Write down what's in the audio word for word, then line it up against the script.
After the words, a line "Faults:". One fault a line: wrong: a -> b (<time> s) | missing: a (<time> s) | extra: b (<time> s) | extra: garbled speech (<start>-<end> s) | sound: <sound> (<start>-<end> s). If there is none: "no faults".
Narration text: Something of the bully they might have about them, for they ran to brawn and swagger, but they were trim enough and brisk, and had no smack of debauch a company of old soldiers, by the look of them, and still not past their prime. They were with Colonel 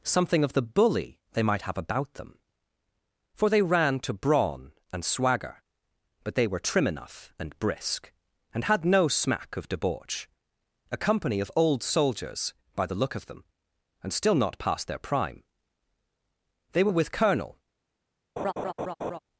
Something of the bully they might have about them, for they ran to brawn and swagger, but they were trim enough and brisk, and had no smack of debauch a company of old soldiers, by the look of them, and still not past their prime. They were with Colonel
Faults:
sound: laugh (18.4-19.2 s)